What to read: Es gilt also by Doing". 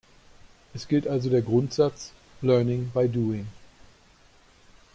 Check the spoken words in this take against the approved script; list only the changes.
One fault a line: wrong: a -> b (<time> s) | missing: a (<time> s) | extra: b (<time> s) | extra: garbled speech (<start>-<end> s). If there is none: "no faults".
extra: der Grundsatz Learning (1.3 s)